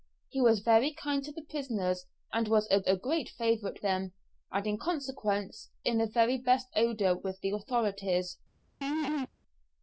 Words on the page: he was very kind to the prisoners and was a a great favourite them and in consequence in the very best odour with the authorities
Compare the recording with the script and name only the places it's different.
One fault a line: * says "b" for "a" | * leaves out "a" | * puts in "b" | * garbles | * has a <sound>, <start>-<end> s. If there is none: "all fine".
* has a laugh, 8.8-9.3 s